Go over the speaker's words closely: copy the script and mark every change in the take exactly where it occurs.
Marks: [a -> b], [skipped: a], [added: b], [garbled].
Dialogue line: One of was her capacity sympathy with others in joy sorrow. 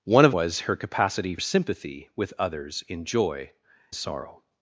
One of was her capacity sympathy with others in joy sorrow.